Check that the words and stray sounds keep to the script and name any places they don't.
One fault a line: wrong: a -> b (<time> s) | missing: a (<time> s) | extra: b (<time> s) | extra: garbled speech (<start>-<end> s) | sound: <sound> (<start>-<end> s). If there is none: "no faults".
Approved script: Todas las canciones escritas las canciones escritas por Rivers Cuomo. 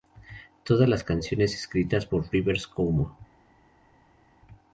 missing: las canciones escritas (2.1 s)